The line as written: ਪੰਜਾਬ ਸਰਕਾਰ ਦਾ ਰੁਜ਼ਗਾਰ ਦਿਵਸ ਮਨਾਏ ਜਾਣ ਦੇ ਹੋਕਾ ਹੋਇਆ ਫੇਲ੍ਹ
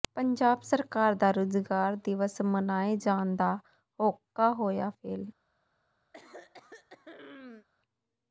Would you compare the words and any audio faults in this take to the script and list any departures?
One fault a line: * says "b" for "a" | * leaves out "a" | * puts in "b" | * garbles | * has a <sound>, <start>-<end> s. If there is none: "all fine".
* says "ਦਾ" for "ਦੇ"
* has a throat clearing, 6.1-7.7 s